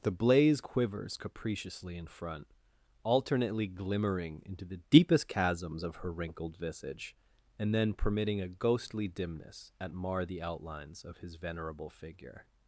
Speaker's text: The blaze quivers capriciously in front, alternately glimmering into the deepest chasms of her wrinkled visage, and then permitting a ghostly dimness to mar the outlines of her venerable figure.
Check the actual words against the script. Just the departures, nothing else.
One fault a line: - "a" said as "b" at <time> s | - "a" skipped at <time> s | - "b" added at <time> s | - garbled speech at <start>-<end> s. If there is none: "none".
- "to" said as "at" at 9.8 s
- "her" said as "his" at 11.2 s